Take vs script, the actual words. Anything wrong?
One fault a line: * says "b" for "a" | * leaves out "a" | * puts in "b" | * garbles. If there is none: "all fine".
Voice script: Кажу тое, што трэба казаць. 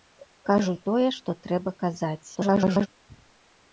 * garbles